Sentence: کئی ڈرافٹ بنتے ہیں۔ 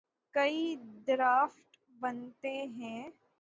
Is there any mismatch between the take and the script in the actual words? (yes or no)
no